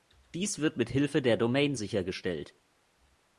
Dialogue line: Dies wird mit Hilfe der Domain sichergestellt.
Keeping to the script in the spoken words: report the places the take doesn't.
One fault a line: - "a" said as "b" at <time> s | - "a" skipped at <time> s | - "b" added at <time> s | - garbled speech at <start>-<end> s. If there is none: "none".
none